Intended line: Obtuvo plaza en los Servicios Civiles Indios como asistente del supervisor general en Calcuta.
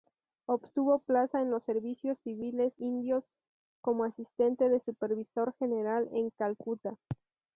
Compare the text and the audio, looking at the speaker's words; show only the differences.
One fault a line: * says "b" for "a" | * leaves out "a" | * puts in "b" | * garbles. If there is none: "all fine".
all fine